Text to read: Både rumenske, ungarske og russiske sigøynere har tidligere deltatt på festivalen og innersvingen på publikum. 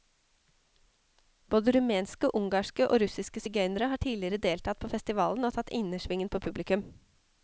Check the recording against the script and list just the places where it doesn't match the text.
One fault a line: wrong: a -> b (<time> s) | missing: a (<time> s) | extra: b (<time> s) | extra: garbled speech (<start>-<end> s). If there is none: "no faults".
extra: tatt (5.6 s)